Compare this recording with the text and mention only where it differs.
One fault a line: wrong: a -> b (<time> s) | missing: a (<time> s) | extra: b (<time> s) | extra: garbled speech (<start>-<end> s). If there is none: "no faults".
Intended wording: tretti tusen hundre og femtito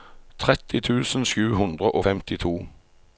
extra: sju (1.3 s)